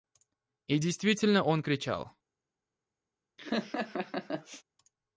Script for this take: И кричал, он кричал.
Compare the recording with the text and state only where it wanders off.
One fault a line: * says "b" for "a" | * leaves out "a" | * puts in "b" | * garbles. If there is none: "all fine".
* says "действительно" for "кричал"